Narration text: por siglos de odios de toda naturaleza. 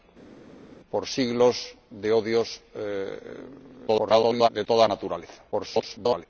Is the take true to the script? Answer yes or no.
no